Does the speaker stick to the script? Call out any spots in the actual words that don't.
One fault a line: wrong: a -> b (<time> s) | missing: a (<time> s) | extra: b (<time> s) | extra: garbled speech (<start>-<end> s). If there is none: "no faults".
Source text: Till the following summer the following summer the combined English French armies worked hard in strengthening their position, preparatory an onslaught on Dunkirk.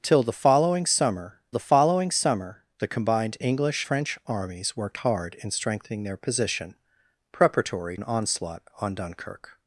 no faults